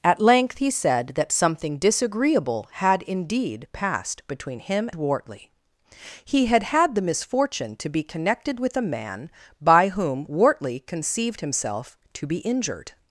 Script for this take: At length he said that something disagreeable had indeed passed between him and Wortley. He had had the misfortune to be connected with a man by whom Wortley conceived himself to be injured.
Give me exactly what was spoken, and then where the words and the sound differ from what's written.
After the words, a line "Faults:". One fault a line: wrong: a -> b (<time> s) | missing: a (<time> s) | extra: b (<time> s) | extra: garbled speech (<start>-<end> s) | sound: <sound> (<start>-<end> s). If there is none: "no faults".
At length he said that something disagreeable had indeed passed between him Wortley. He had had the misfortune to be connected with a man by whom Wortley conceived himself to be injured.
Faults:
missing: and (4.9 s)